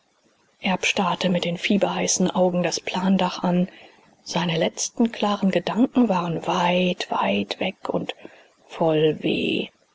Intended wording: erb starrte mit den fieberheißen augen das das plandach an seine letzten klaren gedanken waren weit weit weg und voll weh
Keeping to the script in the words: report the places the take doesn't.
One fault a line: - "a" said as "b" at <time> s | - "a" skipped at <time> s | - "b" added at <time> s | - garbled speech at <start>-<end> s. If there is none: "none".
- "das" skipped at 2.8 s